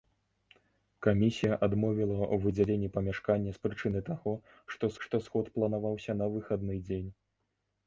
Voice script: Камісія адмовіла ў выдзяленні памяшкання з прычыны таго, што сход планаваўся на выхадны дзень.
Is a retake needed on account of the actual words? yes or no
yes